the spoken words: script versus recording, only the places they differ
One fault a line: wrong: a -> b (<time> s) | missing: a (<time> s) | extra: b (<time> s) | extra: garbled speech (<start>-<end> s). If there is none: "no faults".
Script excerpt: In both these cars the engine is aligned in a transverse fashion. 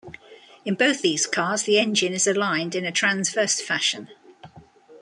no faults